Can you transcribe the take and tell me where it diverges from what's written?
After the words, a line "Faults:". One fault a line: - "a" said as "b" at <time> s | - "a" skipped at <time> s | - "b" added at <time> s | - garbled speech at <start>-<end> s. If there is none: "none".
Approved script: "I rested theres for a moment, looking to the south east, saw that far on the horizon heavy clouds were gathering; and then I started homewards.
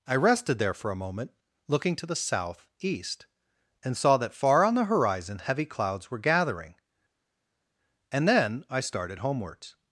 "I rested there for a moment, looking to the south east, and saw that far on the horizon heavy clouds were gathering; and then I started homewards.
Faults:
- "theres" said as "there" at 0.6 s
- "and" added at 3.8 s